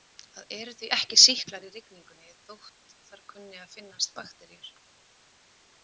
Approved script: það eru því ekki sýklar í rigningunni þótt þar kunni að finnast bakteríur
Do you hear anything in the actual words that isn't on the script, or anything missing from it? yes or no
no